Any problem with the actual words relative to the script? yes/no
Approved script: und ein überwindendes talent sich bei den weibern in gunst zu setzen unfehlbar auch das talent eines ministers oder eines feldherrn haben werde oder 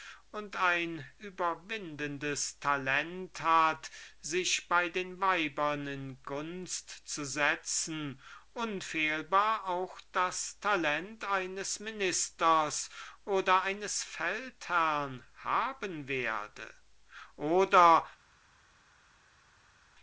yes